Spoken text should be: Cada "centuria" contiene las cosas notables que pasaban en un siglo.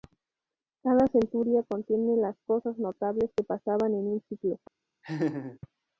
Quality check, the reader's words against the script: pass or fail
pass